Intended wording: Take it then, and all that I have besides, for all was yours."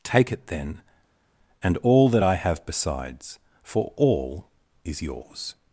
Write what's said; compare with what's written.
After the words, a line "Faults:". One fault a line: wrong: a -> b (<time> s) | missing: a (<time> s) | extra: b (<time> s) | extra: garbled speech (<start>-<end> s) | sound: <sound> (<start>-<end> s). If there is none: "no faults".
Take it then, and all that I have besides, for all is yours."
Faults:
wrong: was -> is (4.8 s)